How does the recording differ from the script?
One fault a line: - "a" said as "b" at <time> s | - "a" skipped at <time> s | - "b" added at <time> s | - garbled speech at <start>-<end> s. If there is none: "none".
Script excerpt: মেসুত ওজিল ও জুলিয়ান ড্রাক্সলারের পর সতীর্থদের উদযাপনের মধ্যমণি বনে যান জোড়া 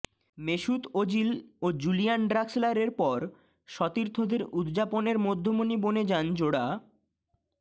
none